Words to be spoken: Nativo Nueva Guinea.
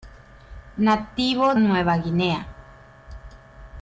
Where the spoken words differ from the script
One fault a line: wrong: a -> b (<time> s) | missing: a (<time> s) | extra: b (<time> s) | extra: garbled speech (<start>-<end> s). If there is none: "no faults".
no faults